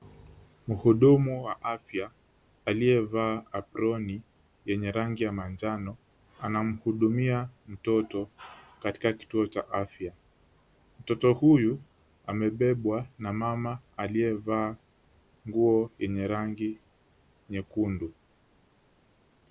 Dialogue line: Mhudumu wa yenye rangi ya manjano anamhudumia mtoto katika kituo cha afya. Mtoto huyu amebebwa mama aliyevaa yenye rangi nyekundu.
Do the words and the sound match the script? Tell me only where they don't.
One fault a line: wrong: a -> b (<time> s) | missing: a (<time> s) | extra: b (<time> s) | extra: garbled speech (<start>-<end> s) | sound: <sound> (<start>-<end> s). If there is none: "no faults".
extra: afya aliyevaa aproni (1.6 s)
extra: na (13.2 s)
extra: nguo (15.5 s)